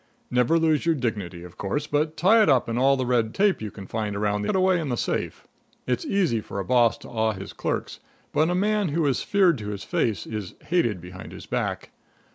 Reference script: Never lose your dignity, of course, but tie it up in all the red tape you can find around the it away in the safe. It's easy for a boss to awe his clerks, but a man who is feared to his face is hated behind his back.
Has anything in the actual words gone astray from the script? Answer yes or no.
no